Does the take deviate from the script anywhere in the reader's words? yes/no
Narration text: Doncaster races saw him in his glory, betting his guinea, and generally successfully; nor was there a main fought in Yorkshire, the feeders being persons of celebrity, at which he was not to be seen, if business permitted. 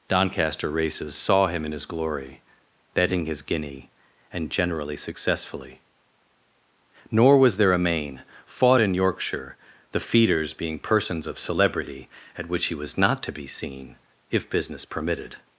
no